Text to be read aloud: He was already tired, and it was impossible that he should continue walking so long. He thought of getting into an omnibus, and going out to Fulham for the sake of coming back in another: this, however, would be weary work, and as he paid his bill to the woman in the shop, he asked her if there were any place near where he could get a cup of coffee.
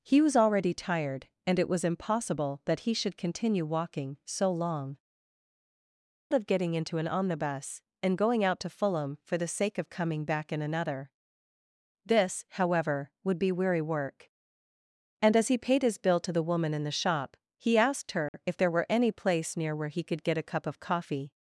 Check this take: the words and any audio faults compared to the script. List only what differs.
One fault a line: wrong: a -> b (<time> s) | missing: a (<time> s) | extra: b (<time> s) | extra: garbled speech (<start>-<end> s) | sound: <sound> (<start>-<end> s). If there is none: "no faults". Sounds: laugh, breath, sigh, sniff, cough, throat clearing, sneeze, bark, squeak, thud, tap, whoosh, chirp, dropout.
missing: He thought (5.0 s)
sound: dropout (18.3-18.3 s)